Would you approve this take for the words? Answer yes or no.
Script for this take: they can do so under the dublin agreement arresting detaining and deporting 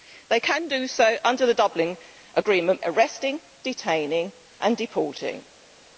yes